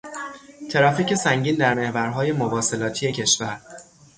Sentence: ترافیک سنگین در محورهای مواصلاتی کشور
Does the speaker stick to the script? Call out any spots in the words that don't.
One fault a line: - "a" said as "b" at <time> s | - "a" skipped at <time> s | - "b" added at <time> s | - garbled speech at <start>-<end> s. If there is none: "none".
none